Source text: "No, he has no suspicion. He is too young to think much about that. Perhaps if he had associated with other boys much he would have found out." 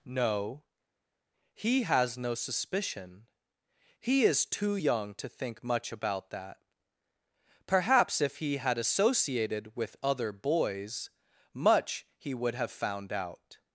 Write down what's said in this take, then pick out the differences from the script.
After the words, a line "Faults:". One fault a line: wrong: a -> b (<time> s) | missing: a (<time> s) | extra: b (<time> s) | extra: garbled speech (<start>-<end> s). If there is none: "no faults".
"No, he has no suspicion. He is too young to think much about that. Perhaps if he had associated with other boys much he would have found out."
Faults:
no faults